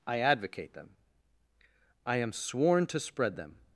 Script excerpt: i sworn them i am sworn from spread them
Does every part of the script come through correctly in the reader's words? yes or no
no